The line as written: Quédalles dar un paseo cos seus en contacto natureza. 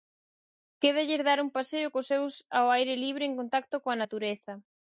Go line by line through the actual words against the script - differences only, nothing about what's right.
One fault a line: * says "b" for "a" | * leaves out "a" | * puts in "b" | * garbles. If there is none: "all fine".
* puts in "ao aire libre"
* puts in "coa"